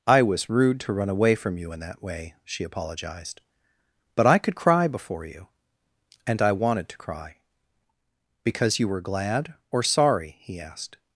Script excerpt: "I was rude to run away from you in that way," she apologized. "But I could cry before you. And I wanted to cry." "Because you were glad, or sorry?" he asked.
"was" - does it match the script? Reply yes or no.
yes